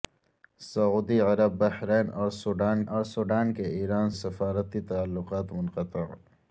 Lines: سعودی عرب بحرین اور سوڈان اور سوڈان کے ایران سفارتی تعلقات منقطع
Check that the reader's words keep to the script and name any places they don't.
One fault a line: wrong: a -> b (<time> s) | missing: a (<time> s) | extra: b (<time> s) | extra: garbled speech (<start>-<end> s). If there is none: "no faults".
no faults